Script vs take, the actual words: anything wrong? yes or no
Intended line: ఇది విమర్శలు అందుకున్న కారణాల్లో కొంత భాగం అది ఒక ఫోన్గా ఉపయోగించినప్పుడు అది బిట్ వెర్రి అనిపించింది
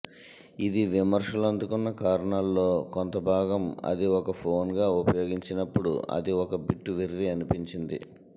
yes